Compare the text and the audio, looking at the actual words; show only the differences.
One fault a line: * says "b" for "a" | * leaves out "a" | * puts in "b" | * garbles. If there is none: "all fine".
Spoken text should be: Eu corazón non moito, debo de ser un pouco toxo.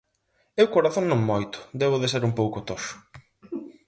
all fine